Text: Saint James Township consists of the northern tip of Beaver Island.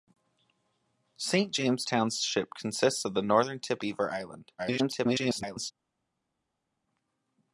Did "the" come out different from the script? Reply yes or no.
no